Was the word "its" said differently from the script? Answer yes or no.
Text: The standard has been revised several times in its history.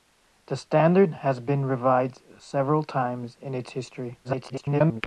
no